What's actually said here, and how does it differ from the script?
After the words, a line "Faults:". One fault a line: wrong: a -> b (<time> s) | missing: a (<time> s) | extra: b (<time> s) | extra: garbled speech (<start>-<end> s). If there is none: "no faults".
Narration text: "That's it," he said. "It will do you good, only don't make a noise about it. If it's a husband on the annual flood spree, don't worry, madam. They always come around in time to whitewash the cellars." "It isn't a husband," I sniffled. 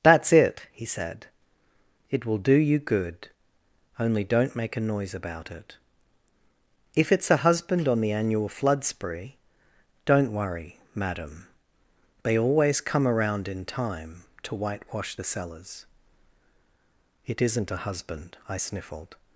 "That's it," he said. "It will do you good, only don't make a noise about it. If it's a husband on the annual flood spree, don't worry, madam. They always come around in time to whitewash the cellars." "It isn't a husband," I sniffled.
Faults:
no faults